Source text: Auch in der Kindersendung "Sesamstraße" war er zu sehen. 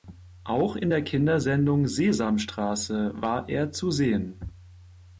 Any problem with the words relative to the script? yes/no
no